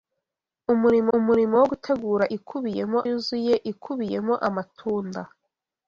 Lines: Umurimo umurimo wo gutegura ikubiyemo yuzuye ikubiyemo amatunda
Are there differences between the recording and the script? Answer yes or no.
no